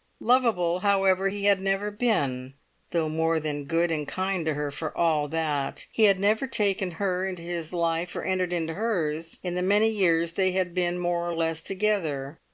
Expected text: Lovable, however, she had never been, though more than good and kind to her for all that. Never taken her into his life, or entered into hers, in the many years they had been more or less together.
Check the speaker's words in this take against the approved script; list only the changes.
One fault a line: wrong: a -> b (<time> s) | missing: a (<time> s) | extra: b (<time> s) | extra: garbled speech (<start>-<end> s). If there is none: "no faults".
wrong: she -> he (1.3 s)
extra: He had (5.9 s)